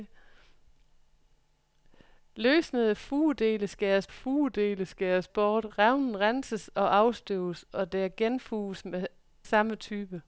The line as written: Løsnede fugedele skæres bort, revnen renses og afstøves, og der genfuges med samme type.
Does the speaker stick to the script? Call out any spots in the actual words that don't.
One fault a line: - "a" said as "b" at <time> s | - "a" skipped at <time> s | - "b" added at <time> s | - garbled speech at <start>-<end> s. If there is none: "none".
- "fugedele skæres" added at 4.1 s
- "med" skipped at 8.9 s